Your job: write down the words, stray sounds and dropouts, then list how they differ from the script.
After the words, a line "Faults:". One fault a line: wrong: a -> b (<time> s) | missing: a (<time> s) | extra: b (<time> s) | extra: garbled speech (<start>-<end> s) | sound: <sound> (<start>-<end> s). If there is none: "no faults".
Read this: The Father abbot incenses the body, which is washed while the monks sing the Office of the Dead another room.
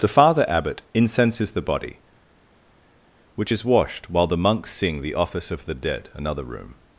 The Father abbot incenses the body, which is washed while the monks sing the Office of the Dead another room.
Faults:
no faults